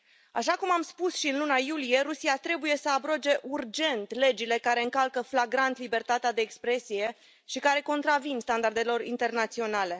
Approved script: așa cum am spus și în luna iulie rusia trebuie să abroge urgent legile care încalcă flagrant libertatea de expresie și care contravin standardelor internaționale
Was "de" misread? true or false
false